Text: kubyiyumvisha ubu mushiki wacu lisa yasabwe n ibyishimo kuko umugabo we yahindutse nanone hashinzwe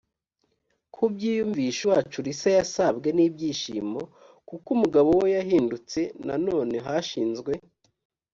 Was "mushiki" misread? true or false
true